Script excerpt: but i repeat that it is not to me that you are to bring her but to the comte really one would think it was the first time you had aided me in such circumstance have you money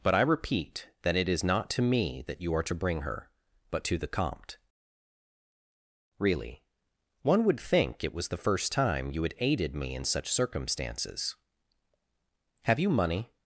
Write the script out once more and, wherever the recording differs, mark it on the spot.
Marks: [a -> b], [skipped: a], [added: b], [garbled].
but i repeat that it is not to me that you are to bring her but to the comte really one would think it was the first time you had aided me in such [circumstance -> circumstances] have you money